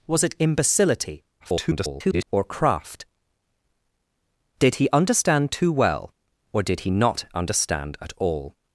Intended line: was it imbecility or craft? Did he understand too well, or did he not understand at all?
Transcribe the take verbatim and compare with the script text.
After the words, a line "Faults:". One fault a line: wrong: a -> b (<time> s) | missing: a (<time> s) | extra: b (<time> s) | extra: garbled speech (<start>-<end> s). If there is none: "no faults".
was it imbecility [garbled] or craft? Did he understand too well, or did he not understand at all?
Faults:
extra: garbled speech (1.4-2.2 s)